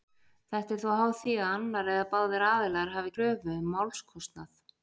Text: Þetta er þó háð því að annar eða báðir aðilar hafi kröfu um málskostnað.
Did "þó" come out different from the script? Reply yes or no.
no